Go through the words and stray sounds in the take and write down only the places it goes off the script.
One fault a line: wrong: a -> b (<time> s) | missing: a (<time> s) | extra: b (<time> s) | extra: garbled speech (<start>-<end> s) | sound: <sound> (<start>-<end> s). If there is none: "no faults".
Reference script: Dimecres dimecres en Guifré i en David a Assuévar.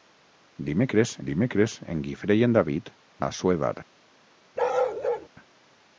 sound: bark (4.6-5.3 s)